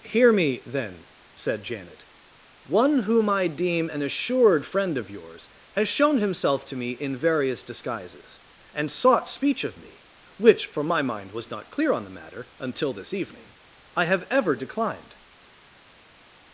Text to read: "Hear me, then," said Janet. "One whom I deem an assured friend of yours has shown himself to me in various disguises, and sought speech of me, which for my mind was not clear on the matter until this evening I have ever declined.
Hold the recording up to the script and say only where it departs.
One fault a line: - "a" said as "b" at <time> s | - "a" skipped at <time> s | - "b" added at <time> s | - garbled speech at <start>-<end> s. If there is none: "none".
none